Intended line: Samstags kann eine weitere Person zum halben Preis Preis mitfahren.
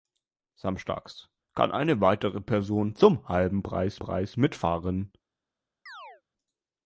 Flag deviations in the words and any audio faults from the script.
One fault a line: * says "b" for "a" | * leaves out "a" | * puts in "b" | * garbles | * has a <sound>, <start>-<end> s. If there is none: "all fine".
* has a chirp, 5.9-6.2 s